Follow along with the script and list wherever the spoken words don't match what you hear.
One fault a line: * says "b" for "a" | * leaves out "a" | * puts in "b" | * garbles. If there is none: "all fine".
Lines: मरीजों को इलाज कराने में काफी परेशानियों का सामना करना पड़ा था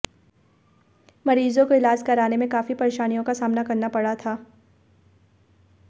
all fine